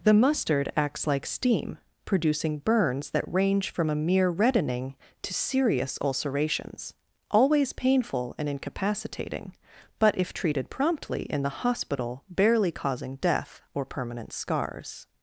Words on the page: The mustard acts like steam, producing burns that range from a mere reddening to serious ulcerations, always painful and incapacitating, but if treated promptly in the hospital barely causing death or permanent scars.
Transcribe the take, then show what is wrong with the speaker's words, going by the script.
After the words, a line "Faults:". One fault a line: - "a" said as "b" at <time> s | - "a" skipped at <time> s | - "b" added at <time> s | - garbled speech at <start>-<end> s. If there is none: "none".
The mustard acts like steam, producing burns that range from a mere reddening to serious ulcerations, always painful and incapacitating, but if treated promptly in the hospital barely causing death or permanent scars.
Faults:
none